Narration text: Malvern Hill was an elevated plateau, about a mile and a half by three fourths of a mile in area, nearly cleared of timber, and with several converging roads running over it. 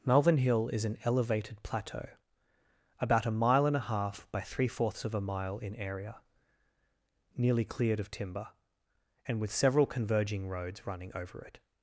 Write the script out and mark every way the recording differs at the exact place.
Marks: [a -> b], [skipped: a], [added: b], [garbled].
Malvern Hill [was -> is] an elevated plateau, about a mile and a half by three fourths of a mile in area, nearly cleared of timber, and with several converging roads running over it.